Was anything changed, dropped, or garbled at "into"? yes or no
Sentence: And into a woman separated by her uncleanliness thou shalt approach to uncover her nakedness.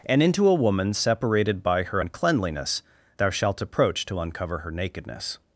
no